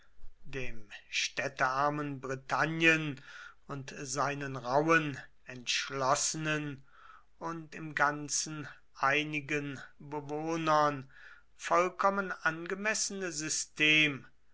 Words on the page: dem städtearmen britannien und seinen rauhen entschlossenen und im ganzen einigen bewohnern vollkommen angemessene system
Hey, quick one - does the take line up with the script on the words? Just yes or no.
yes